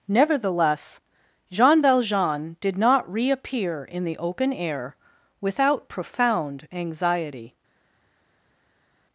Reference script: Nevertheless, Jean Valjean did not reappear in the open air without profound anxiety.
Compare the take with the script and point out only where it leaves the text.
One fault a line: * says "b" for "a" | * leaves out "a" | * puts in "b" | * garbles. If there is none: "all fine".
all fine